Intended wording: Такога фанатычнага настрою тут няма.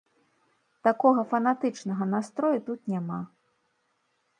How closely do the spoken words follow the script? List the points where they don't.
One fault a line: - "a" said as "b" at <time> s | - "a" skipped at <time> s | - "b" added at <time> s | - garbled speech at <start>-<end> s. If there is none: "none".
none